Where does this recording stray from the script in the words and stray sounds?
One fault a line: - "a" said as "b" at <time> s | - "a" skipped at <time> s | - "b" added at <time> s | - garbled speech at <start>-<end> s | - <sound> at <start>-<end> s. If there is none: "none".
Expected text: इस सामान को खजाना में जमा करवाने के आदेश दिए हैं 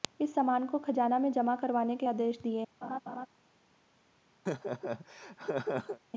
- laugh at 2.8-3.3 s
- laugh at 4.5-6.0 s